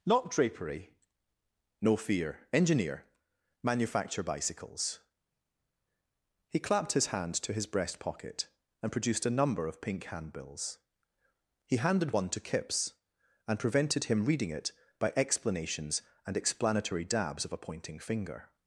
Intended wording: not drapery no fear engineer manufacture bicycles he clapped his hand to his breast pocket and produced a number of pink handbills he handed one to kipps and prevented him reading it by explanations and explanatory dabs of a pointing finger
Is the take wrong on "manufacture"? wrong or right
right